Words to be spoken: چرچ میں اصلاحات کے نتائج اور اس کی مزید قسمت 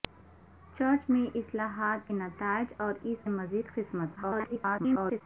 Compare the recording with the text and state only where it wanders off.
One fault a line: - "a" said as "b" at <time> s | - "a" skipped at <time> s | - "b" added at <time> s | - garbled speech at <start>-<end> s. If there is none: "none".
- "کے" skipped at 2.1 s
- "کی" skipped at 3.3 s
- garbled speech at 4.2-5.2 s